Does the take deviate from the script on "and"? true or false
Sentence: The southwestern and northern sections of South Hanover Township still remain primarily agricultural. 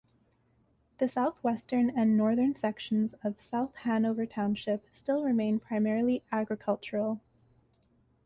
false